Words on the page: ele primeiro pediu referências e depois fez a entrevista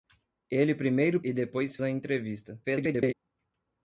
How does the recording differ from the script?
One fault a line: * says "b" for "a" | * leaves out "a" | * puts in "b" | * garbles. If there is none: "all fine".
* leaves out "pediu referências"
* leaves out "fez"
* garbles